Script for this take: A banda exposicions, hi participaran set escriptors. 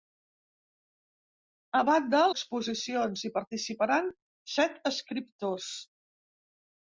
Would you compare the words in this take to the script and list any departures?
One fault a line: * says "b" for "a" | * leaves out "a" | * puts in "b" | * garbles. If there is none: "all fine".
all fine